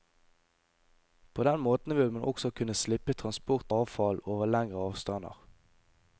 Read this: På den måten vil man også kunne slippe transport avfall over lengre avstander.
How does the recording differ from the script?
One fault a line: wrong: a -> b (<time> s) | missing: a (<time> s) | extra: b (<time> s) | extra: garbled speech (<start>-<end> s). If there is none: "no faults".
no faults